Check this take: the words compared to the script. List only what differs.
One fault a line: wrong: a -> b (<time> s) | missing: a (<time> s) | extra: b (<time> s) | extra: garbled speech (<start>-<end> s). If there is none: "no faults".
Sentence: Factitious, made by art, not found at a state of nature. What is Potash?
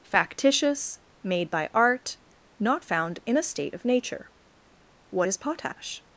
wrong: at -> in (3.2 s)